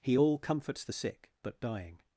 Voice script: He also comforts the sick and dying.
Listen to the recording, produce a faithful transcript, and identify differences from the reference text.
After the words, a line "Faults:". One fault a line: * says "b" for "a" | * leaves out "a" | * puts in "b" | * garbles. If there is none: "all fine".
He all comforts the sick but dying.
Faults:
* says "all" for "also"
* says "but" for "and"